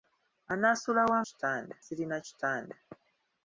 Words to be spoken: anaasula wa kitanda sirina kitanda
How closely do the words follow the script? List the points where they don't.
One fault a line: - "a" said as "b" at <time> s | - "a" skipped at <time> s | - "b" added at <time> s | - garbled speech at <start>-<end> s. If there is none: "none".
none